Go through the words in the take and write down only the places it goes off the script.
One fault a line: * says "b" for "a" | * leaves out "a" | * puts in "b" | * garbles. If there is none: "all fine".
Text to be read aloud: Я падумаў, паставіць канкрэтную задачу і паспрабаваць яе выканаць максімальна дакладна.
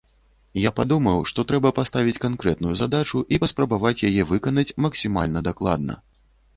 * puts in "што трэба"